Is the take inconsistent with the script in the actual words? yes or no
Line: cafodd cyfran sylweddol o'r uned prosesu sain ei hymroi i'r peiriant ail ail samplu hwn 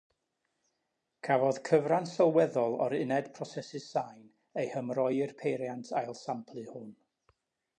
yes